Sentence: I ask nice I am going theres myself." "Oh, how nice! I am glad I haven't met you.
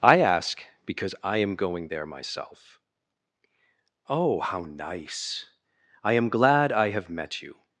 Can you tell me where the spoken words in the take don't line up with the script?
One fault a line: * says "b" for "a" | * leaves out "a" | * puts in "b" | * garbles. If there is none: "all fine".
* says "because" for "nice"
* says "there" for "theres"
* says "have" for "haven't"